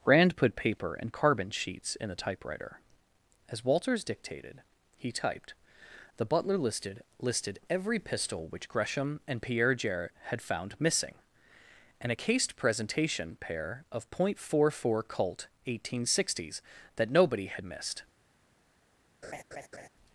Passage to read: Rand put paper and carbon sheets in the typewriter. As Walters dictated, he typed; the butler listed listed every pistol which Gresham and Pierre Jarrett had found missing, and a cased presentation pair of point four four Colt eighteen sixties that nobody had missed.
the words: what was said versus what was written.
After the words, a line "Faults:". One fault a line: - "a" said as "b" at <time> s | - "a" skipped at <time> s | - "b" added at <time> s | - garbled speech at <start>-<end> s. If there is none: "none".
Rand put paper and carbon sheets in the typewriter. As Walters dictated, he typed; the butler listed listed every pistol which Gresham and Pierre Jarrett had found missing, and a cased presentation pair of point four four Colt eighteen sixties that nobody had missed.
Faults:
none